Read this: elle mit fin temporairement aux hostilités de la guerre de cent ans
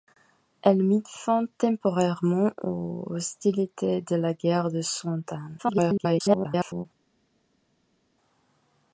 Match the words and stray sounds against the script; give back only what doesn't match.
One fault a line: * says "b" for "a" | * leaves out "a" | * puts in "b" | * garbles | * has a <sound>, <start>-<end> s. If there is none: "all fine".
* garbles